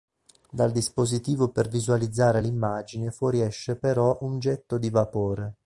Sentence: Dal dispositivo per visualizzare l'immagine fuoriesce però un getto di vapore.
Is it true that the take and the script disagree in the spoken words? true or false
false